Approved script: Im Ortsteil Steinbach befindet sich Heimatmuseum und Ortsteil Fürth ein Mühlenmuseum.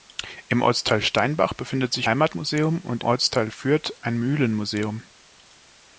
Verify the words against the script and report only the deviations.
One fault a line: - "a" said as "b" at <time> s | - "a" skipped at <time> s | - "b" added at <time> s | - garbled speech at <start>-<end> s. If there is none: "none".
none